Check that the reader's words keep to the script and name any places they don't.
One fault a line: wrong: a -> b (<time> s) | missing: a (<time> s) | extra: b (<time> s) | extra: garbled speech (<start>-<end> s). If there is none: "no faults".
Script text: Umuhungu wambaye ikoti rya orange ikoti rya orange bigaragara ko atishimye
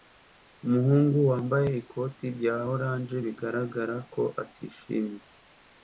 missing: ikoti rya orange (3.2 s)